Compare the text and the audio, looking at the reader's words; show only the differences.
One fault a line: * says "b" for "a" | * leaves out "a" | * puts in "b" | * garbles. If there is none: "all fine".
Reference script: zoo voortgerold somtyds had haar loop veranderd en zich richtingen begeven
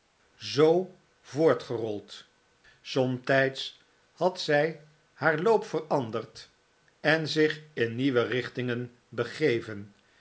* puts in "zy"
* puts in "in nieuwe"